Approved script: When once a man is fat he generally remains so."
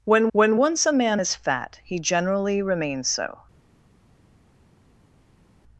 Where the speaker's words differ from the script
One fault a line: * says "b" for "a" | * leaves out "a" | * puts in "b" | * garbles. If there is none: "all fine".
* puts in "when"